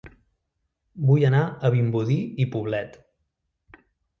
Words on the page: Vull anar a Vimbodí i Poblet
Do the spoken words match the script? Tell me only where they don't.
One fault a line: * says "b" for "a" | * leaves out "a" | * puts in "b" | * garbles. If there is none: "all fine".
all fine